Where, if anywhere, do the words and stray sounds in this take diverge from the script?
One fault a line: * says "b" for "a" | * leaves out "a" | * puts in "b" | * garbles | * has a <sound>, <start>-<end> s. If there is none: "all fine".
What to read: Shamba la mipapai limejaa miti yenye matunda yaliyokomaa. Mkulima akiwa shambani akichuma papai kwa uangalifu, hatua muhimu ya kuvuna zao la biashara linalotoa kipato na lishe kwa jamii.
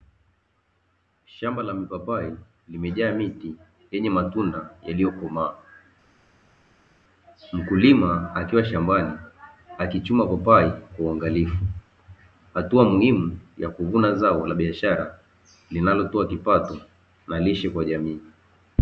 all fine